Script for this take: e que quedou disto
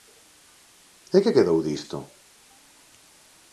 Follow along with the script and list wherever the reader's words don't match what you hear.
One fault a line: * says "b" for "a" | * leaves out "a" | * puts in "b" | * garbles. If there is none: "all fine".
all fine